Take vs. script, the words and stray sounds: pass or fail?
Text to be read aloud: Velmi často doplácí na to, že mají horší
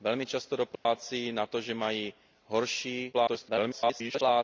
fail